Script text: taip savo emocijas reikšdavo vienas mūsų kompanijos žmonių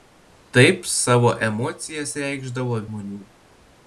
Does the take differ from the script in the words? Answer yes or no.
yes